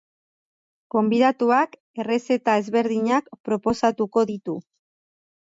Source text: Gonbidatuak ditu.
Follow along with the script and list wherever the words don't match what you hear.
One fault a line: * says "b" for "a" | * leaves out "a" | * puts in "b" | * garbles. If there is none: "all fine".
* puts in "errezeta ezberdinak proposatuko"